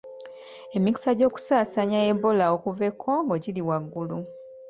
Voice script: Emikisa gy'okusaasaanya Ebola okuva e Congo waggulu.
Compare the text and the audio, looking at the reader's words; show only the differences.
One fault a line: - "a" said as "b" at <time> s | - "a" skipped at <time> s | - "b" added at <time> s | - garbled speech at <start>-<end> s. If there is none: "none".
- "giri" added at 3.4 s